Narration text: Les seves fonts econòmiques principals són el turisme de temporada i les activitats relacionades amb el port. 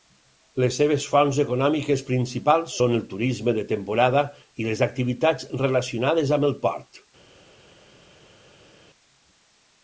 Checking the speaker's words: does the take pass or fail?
pass